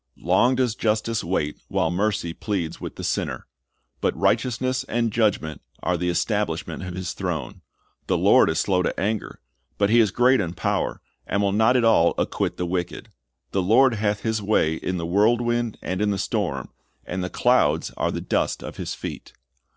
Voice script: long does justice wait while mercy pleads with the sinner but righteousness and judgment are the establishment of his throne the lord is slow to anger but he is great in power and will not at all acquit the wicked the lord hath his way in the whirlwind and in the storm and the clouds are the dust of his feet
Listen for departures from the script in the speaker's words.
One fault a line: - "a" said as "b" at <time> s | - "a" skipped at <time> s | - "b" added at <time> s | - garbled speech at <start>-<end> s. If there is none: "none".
none